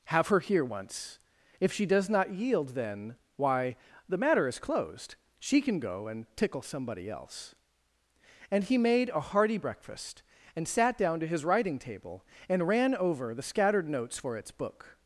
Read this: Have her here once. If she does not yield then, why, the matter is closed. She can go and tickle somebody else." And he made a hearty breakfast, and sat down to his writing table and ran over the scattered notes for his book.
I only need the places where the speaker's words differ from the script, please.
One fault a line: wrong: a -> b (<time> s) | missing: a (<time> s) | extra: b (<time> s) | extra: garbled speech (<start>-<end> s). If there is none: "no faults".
wrong: his -> its (14.4 s)